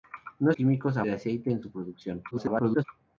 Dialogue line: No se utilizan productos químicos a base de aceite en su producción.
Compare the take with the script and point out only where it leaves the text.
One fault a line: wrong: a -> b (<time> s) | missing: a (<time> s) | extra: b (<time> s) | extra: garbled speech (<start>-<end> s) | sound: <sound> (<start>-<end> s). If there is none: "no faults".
missing: se utilizan productos (0.5 s)
missing: base (1.0 s)
extra: garbled speech (2.3-2.8 s)